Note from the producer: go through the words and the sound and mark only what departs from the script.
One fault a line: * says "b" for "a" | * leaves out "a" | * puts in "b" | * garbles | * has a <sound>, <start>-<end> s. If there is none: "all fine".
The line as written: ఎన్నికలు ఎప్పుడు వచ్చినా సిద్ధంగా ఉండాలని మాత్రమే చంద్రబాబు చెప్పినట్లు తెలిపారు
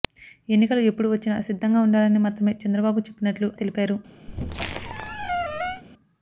* has a squeak, 4.3-5.8 s